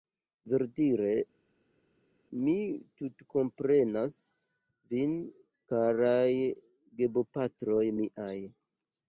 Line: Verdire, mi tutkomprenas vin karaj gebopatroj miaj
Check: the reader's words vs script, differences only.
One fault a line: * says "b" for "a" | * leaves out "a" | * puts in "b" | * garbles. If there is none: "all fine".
all fine